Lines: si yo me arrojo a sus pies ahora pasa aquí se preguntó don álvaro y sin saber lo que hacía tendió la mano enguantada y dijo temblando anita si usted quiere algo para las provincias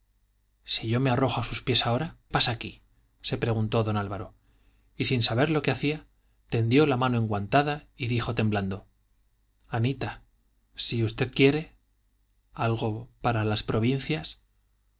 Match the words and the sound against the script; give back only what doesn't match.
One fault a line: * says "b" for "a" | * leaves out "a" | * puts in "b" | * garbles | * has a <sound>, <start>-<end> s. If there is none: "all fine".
all fine